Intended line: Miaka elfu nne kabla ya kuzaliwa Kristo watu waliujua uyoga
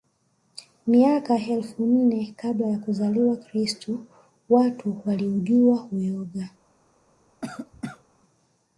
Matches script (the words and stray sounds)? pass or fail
fail